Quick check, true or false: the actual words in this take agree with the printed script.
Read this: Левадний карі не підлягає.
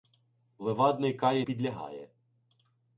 false